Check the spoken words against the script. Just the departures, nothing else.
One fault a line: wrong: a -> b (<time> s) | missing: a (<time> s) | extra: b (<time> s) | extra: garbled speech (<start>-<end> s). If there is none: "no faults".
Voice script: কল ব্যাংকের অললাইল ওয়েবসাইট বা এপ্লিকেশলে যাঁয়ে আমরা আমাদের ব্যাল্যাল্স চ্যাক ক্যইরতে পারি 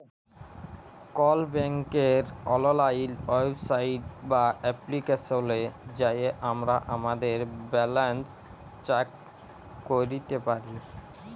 no faults